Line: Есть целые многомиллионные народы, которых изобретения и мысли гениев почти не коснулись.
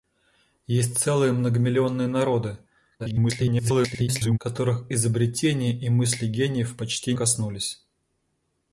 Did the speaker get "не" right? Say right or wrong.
wrong